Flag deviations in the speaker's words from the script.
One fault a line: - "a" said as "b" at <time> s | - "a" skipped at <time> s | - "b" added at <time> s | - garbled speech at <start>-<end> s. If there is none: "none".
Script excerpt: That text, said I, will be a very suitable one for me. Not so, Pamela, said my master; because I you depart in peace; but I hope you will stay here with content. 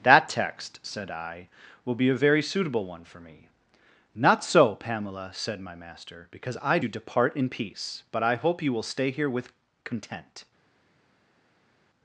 none